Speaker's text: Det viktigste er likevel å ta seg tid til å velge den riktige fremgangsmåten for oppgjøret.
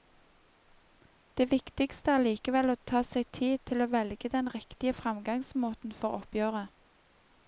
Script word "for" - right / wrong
right